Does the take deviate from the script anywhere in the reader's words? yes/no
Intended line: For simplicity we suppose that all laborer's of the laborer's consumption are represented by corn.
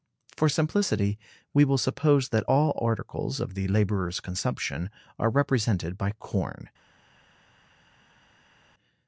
yes